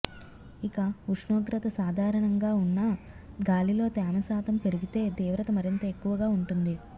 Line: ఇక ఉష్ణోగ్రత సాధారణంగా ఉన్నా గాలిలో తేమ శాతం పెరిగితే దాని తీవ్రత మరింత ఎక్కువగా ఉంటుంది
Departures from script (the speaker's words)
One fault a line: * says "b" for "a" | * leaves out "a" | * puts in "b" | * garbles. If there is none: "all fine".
* leaves out "దాని"